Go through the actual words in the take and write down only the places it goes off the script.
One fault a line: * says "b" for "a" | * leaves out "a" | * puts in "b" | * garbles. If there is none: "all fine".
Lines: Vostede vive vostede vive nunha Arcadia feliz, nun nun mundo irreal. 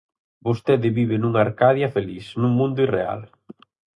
* leaves out "vostede vive"
* leaves out "nun"